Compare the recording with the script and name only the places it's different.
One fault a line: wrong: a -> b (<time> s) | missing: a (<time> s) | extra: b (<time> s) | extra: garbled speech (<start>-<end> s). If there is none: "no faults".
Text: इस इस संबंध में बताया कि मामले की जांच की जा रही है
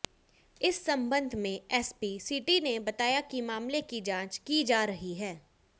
missing: इस (0.8 s)
extra: एसपी सिटी ने (1.7 s)